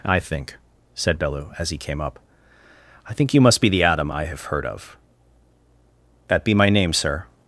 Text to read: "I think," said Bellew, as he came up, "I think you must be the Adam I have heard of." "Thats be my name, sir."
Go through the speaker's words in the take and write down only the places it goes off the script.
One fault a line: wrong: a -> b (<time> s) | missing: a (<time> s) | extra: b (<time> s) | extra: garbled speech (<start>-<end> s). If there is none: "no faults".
wrong: Thats -> That (6.3 s)